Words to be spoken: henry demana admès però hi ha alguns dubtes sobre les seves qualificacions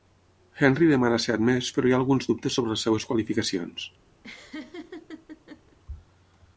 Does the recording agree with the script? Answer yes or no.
no